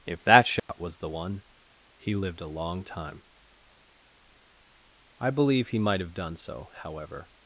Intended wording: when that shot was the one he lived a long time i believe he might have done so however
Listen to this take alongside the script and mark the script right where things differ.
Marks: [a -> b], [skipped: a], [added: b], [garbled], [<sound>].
[when -> if] that shot [dropout] was the one he lived a long time i believe he might have done so however